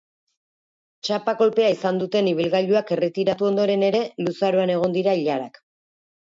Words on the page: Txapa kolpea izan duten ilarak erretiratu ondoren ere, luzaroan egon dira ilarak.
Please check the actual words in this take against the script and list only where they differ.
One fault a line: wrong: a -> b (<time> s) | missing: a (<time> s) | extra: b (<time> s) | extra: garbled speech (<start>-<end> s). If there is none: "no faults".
wrong: ilarak -> ibilgailuak (2.3 s)